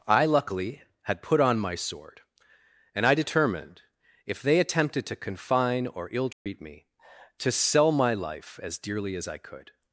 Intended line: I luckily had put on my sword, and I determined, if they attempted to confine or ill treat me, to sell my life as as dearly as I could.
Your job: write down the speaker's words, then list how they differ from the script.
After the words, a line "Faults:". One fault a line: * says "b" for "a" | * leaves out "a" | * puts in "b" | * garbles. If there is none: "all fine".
I luckily had put on my sword, and I determined, if they attempted to confine or ill treat me, to sell my life as dearly as I could.
Faults:
* leaves out "as"